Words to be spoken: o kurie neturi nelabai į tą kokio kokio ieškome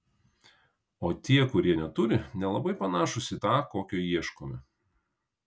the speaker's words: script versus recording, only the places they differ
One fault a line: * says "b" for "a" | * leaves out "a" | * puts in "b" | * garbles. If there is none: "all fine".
* puts in "tie"
* puts in "panašūs"
* leaves out "kokio"